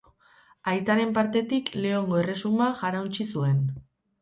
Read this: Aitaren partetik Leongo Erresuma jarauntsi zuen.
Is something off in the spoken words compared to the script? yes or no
no